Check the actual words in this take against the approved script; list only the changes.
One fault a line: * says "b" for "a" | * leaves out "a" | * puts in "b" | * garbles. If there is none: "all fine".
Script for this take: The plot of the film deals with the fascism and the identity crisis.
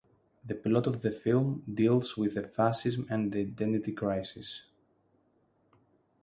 all fine